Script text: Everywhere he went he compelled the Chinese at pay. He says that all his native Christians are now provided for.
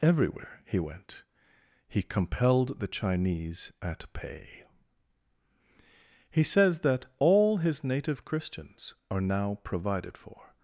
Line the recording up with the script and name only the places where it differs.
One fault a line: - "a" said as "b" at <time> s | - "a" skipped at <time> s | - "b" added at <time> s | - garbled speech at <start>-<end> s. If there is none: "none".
none